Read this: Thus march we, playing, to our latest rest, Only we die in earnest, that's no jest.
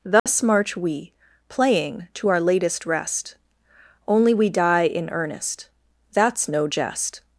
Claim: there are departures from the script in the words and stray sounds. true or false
true